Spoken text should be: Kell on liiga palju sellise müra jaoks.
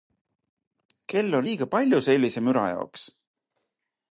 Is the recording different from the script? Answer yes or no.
no